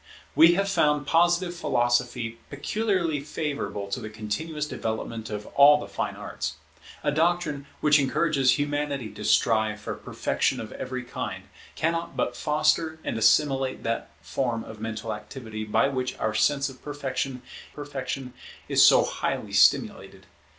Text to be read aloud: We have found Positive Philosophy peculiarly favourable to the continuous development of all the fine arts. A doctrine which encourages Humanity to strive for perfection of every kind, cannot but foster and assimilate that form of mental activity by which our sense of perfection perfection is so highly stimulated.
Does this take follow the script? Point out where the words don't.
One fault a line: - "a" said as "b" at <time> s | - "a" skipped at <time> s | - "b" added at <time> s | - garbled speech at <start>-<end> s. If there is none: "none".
none